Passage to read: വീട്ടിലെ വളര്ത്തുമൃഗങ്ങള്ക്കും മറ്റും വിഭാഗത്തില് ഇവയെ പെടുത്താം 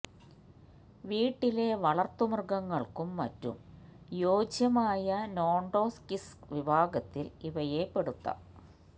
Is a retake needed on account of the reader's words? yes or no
yes